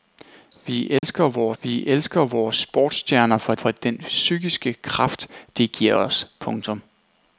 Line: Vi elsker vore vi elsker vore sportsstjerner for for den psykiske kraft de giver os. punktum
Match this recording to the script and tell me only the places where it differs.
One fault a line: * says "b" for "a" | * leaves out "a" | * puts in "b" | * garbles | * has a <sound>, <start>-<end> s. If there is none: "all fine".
* has a dropout, 1.0-1.0 s